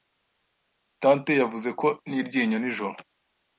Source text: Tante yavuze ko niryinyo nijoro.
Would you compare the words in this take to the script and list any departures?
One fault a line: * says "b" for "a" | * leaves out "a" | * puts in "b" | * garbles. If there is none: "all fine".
all fine